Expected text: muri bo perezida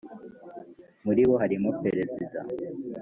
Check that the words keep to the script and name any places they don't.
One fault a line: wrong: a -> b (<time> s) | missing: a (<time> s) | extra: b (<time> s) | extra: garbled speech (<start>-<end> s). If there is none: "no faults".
extra: harimo (1.4 s)